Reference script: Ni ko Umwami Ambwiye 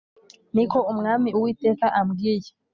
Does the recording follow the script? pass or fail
fail